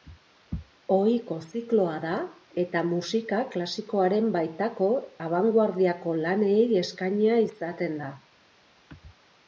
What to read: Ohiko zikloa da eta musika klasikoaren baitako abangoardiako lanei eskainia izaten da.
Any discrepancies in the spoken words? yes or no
no